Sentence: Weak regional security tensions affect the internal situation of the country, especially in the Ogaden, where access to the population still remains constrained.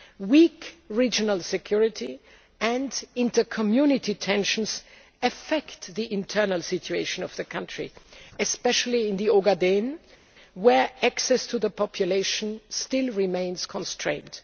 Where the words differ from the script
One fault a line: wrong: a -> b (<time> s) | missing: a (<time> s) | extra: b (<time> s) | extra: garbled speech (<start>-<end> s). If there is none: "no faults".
extra: and inter community (2.6 s)